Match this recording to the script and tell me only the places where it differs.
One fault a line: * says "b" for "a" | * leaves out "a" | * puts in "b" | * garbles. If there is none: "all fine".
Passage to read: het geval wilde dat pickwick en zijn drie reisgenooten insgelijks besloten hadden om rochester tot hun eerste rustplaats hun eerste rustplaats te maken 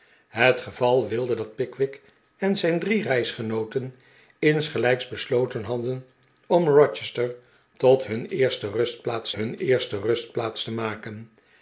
all fine